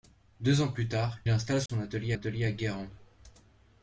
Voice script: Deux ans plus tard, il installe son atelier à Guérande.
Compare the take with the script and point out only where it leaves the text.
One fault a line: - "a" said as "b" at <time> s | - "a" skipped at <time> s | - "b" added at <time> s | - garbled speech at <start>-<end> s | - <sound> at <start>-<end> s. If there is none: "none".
- "il" skipped at 1.2 s
- dropout at 1.7-1.7 s
- "atelier" added at 2.1 s